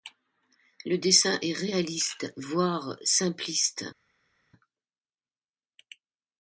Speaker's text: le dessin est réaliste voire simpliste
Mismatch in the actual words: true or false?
false